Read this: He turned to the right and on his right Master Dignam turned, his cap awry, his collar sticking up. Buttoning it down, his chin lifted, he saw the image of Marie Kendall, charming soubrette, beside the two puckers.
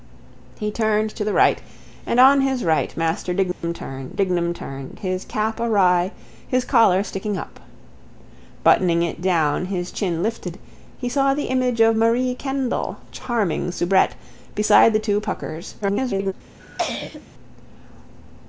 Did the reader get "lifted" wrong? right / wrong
right